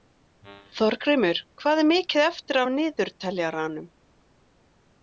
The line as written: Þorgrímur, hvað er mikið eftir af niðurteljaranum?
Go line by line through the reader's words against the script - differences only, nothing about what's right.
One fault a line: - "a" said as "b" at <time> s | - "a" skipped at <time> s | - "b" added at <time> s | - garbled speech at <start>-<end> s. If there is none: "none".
none